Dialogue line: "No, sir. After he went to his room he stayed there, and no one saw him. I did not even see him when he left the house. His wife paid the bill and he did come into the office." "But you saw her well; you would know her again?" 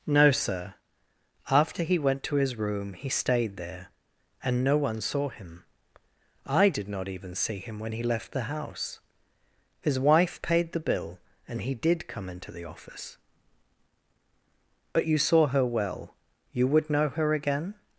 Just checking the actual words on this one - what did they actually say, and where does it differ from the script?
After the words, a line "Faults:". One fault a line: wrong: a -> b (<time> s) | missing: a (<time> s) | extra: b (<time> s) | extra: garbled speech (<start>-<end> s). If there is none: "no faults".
"No, sir. After he went to his room he stayed there, and no one saw him. I did not even see him when he left the house. His wife paid the bill and he did come into the office." "But you saw her well; you would know her again?"
Faults:
no faults